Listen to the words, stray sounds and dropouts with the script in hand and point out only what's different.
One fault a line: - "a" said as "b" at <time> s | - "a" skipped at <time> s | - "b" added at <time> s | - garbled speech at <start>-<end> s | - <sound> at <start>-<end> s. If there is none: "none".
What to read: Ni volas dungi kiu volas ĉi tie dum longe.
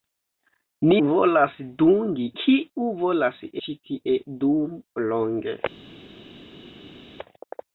none